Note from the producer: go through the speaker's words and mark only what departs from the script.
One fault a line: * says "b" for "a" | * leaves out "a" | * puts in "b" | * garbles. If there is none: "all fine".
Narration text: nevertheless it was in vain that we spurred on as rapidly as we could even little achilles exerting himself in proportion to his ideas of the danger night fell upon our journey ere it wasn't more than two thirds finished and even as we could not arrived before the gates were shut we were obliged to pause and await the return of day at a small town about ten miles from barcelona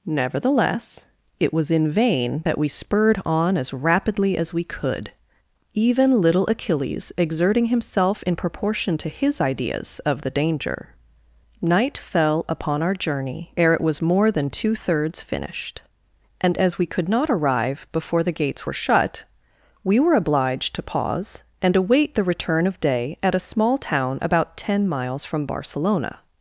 * says "was" for "wasn't"
* leaves out "even"
* says "arrive" for "arrived"